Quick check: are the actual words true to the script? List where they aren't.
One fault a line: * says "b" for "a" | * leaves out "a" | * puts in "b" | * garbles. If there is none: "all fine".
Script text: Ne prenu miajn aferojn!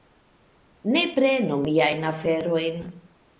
all fine